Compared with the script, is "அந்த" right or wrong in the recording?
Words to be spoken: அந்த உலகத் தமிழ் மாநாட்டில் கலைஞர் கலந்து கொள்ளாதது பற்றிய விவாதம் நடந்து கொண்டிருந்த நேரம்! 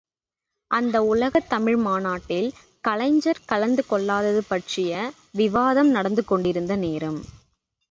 right